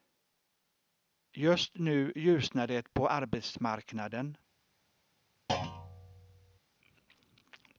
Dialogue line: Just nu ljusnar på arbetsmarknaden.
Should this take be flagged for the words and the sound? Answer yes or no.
yes